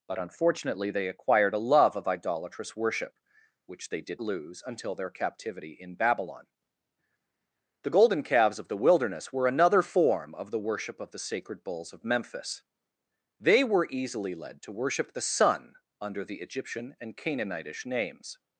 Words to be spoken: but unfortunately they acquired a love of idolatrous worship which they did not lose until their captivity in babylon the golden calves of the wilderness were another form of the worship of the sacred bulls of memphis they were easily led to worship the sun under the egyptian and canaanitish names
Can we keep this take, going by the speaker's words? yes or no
no